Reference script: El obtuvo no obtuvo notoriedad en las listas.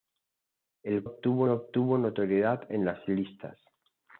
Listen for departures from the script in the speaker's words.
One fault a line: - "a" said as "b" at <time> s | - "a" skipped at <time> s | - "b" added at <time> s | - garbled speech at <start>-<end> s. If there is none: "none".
none